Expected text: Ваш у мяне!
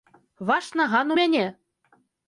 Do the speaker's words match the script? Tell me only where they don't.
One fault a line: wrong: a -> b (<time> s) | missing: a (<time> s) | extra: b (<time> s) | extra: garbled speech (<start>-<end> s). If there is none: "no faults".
extra: наган (0.8 s)